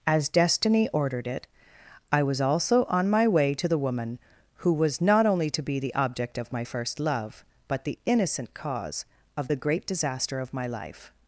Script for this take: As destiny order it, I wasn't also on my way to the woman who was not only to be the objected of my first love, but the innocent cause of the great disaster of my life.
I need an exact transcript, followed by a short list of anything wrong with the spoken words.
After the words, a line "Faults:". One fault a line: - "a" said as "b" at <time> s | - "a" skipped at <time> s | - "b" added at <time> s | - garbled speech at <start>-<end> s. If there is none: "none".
As destiny ordered it, I was also on my way to the woman who was not only to be the object of my first love, but the innocent cause of the great disaster of my life.
Faults:
- "order" said as "ordered" at 0.9 s
- "wasn't" said as "was" at 2.2 s
- "objected" said as "object" at 6.0 s